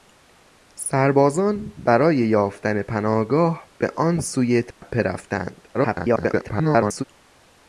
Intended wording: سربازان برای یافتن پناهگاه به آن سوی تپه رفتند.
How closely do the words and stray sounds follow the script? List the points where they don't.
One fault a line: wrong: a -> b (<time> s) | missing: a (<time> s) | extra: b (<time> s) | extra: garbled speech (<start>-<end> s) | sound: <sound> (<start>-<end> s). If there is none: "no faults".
sound: dropout (4.7-4.8 s)
extra: garbled speech (5.7-7.0 s)